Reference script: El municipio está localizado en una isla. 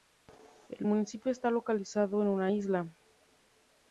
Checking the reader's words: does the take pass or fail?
pass